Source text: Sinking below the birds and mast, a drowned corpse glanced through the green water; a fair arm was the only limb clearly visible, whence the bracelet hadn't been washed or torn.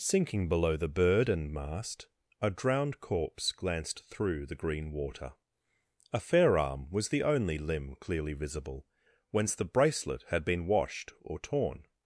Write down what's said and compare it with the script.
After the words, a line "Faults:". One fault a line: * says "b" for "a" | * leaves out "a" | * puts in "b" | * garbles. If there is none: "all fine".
Sinking below the bird and mast, a drowned corpse glanced through the green water; a fair arm was the only limb clearly visible, whence the bracelet had been washed or torn.
Faults:
* says "bird" for "birds"
* says "had" for "hadn't"